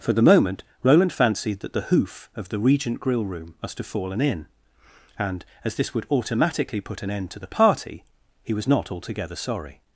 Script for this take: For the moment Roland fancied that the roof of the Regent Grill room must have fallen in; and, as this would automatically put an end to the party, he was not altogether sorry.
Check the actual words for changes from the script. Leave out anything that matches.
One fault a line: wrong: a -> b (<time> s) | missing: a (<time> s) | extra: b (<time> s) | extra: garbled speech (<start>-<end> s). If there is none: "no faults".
wrong: roof -> hoof (1.8 s)